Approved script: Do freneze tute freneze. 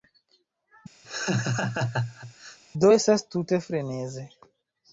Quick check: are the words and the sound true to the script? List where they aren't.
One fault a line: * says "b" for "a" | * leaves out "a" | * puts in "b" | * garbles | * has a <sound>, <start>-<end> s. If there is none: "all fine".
* has a laugh, 1.0-2.6 s
* says "estas" for "freneze"